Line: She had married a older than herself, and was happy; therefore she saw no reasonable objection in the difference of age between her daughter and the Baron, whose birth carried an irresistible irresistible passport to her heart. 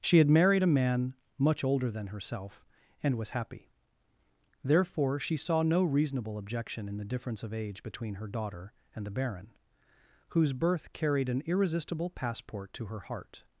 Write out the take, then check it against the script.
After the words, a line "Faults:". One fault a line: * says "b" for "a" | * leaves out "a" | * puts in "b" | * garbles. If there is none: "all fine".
She had married a man much older than herself, and was happy; therefore she saw no reasonable objection in the difference of age between her daughter and the Baron, whose birth carried an irresistible passport to her heart.
Faults:
* puts in "man much"
* leaves out "irresistible"